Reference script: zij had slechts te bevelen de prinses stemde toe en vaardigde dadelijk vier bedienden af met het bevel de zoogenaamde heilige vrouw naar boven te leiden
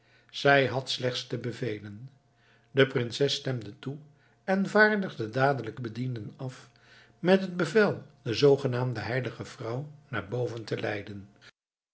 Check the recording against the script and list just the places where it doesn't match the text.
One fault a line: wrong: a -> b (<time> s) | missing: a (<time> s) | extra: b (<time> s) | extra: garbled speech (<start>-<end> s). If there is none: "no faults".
missing: vier (5.8 s)